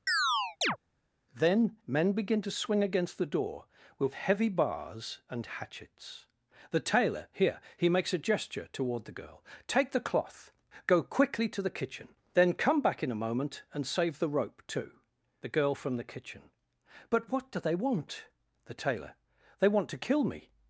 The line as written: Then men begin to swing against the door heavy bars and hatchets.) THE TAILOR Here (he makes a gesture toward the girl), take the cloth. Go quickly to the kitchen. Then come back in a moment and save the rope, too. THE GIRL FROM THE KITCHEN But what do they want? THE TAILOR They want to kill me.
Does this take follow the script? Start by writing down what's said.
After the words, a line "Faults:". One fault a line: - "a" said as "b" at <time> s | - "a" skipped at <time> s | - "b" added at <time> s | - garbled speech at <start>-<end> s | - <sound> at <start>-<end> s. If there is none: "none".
Then men begin to swing against the door with heavy bars and hatchets.) THE TAILOR Here (he makes a gesture toward the girl), take the cloth. Go quickly to the kitchen. Then come back in a moment and save the rope, too. THE GIRL FROM THE KITCHEN But what do they want? THE TAILOR They want to kill me.
Faults:
- chirp at 0.1-0.8 s
- "with" added at 4.0 s